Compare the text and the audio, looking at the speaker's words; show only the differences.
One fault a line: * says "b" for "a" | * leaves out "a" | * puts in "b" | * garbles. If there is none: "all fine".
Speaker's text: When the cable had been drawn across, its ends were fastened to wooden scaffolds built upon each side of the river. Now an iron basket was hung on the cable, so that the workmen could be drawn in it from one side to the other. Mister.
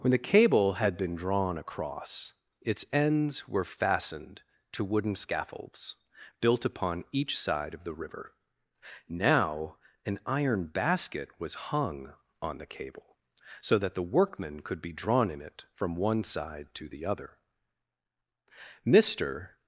all fine